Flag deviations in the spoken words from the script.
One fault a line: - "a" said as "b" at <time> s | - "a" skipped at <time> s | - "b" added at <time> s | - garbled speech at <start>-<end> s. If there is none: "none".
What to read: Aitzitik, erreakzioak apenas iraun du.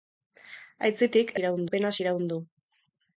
- "erreakzioak" said as "iraun" at 1.4 s